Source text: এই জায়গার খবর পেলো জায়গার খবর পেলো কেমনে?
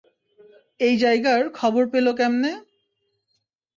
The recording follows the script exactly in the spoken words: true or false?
false